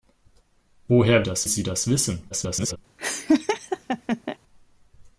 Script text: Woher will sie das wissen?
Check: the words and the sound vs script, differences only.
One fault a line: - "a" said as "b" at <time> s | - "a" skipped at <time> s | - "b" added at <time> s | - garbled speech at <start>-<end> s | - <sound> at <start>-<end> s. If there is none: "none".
- "will" said as "das" at 1.2 s
- garbled speech at 2.3-2.8 s
- laugh at 3.0-4.4 s